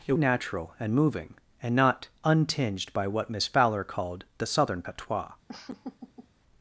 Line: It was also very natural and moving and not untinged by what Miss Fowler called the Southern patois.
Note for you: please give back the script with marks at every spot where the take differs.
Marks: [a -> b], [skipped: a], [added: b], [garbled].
It [skipped: was also very] natural and moving and not untinged by what Miss Fowler called the Southern patois.